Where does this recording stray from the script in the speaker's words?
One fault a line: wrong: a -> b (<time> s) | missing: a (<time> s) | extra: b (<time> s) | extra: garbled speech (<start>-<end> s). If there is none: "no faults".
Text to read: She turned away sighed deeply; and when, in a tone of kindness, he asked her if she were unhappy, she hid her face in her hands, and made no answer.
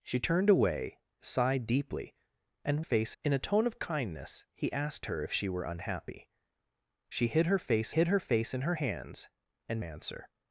wrong: when -> face (2.8 s)
extra: hid her face (7.9 s)
missing: made no (9.8 s)